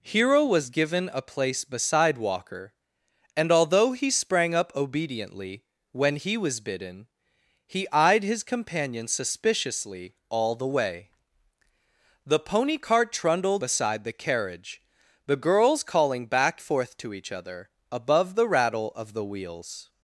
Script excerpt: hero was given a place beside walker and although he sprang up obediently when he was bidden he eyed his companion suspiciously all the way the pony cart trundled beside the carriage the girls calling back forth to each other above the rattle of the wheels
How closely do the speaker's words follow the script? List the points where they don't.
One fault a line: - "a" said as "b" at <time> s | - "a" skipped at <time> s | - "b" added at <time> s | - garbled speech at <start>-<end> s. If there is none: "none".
none